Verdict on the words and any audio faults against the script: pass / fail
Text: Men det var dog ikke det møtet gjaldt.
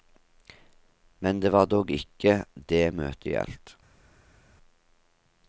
pass